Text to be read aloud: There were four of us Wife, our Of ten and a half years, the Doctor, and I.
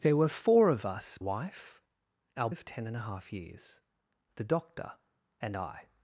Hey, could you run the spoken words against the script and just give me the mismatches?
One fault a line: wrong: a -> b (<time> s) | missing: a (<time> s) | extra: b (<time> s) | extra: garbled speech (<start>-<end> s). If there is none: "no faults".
no faults